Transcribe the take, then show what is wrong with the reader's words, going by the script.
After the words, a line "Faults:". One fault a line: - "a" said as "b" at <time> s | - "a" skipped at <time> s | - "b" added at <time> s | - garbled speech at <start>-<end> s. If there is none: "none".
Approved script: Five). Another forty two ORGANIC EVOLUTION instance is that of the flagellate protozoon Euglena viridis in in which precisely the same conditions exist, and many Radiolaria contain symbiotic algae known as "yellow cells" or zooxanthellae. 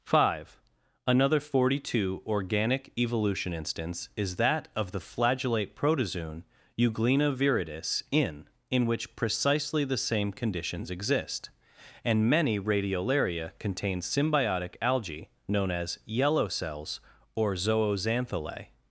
Five). Another forty two ORGANIC EVOLUTION instance is that of the flagellate protozoon Euglena viridis in in which precisely the same conditions exist, and many Radiolaria contain symbiotic algae known as "yellow cells" or zooxanthellae.
Faults:
none